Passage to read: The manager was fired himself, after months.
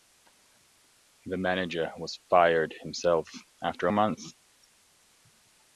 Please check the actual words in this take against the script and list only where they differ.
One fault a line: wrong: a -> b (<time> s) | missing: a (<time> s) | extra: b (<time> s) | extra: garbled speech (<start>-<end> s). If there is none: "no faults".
no faults